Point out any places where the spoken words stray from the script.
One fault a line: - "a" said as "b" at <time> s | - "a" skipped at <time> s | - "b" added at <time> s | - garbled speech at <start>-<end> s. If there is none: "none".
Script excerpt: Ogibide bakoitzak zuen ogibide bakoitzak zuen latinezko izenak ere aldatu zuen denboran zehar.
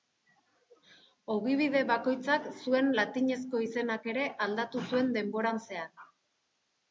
- "ogibide bakoitzak zuen" skipped at 2.9 s